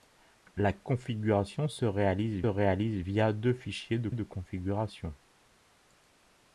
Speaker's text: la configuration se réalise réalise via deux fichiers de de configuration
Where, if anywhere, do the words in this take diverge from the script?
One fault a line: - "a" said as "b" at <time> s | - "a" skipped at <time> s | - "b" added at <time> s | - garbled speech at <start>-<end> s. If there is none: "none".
none